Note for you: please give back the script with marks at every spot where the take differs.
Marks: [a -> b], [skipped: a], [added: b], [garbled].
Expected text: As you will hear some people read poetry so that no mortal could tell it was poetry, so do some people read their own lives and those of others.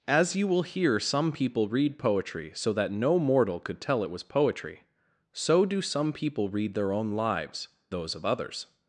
As you will hear some people read poetry so that no mortal could tell it was poetry, so do some people read their own lives [skipped: and] those of others.